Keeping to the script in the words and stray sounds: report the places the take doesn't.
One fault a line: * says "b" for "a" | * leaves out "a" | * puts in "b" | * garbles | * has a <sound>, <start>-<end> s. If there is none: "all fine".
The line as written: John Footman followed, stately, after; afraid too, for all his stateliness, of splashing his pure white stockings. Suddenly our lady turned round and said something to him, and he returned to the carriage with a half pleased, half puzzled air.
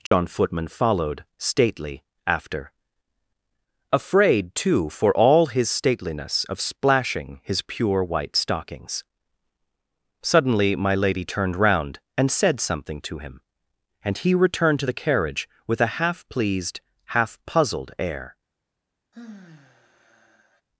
* has a dropout, 0.1-0.1 s
* says "my" for "our"
* has a sigh, 19.1-20.6 s